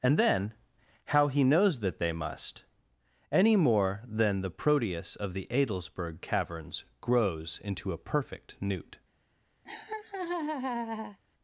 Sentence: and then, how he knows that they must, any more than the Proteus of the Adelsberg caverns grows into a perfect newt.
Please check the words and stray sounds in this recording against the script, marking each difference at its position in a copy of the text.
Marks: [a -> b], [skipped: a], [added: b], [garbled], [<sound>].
and then, how he knows that they must, any more than the Proteus of the Adelsberg caverns grows into a perfect newt. [laugh]